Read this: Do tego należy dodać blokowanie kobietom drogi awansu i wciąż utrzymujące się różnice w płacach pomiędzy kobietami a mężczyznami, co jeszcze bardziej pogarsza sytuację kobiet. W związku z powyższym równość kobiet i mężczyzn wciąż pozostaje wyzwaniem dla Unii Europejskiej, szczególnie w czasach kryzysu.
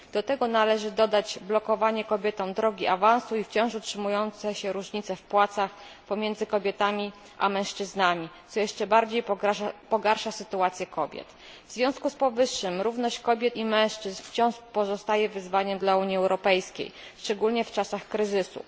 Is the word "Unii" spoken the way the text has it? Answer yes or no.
yes